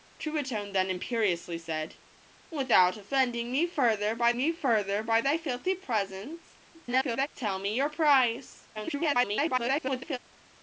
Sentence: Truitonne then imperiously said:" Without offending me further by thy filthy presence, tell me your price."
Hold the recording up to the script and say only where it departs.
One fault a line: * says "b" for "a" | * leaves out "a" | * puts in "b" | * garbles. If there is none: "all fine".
* puts in "me further by"
* garbles
* garbles